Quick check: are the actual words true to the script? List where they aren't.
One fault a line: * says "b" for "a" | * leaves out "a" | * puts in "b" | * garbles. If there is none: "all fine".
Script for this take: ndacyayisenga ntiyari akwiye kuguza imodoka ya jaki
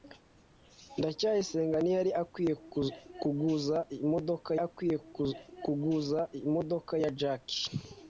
* puts in "akwiye kuguza imodoka"